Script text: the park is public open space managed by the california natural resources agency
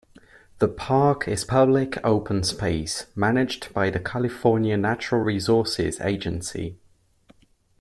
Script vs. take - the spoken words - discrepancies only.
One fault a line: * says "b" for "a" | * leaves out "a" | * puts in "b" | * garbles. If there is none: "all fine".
all fine